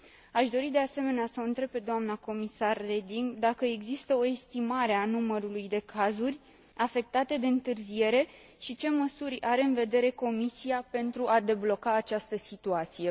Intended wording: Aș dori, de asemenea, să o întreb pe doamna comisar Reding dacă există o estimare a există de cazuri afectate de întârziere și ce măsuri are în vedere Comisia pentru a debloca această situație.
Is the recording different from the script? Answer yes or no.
yes